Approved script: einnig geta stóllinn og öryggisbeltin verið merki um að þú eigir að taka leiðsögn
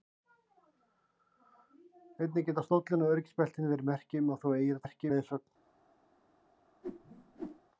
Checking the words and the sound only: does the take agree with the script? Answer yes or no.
no